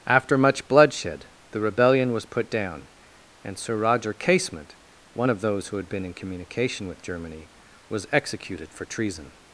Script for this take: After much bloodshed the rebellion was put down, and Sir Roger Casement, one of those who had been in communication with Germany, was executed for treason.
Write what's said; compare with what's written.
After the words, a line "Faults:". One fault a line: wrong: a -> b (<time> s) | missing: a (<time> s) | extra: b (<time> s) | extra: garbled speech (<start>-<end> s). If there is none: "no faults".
After much bloodshed the rebellion was put down, and Sir Roger Casement, one of those who had been in communication with Germany, was executed for treason.
Faults:
no faults